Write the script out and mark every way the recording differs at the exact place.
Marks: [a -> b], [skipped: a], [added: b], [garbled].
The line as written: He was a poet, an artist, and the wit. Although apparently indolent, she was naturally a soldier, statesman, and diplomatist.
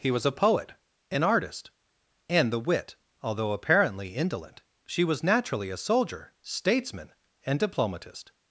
He was a poet, an artist, and the wit. Although apparently indolent, she was naturally a soldier, statesman, and diplomatist.